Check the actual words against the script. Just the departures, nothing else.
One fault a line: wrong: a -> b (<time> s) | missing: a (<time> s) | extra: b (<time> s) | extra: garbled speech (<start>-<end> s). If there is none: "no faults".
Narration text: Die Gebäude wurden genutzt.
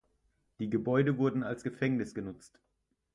extra: als Gefängnis (1.4 s)